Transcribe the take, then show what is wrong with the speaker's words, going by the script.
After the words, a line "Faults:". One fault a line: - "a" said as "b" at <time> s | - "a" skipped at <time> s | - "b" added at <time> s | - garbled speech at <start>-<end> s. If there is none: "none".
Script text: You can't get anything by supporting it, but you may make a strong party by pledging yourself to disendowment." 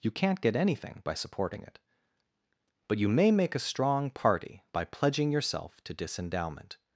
You can't get anything by supporting it, but you may make a strong party by pledging yourself to disendowment."
Faults:
none